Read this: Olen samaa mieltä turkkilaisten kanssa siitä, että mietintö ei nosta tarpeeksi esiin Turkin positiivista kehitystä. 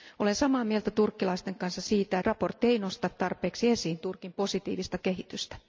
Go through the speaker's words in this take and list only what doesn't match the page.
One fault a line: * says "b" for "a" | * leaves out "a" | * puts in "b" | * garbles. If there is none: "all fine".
* leaves out "että"